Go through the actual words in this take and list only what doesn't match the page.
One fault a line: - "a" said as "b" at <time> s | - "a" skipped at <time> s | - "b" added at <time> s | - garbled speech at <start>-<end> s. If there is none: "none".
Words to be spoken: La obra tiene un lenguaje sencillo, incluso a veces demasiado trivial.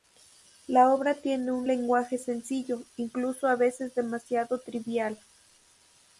none